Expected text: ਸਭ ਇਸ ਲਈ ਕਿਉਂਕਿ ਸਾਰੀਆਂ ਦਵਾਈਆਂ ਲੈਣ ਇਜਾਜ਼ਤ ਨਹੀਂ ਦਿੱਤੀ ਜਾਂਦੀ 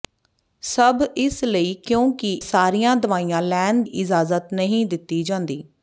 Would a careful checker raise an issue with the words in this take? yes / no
no